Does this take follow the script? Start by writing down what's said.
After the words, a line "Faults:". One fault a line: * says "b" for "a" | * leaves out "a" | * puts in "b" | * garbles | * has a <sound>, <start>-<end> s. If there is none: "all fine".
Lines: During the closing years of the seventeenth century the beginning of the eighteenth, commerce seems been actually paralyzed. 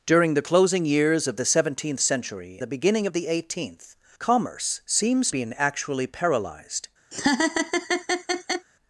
During the closing years of the seventeenth century the beginning of the eighteenth, commerce seems been actually paralyzed.
Faults:
* has a laugh, 7.1-8.7 s